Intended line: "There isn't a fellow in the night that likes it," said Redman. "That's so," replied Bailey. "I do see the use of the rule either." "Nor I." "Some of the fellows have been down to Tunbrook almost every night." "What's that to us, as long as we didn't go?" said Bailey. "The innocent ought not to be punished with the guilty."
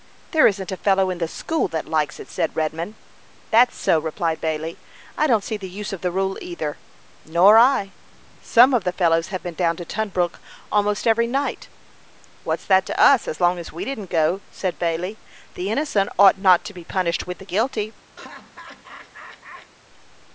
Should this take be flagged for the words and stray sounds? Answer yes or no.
yes